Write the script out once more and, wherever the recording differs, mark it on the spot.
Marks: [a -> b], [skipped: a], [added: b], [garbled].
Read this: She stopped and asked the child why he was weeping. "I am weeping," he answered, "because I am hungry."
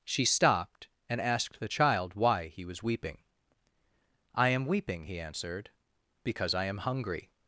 She stopped and asked the child why he was weeping. "I am weeping," he answered, "because I am hungry."